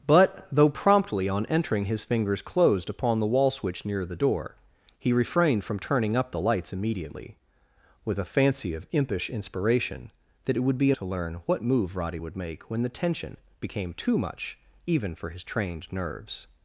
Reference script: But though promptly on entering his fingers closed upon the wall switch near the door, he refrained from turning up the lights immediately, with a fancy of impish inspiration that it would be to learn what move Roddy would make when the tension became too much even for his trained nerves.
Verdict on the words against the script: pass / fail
pass